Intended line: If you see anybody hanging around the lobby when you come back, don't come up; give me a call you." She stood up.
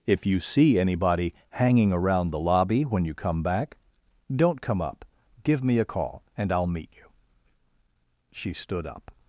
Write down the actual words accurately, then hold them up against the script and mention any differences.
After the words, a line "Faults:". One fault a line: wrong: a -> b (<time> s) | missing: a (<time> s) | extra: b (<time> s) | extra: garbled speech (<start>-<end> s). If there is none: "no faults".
If you see anybody hanging around the lobby when you come back, don't come up; give me a call and I'll meet you." She stood up.
Faults:
extra: and I'll meet (6.4 s)